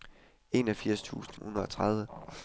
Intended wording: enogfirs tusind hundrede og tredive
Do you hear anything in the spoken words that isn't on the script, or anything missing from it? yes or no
no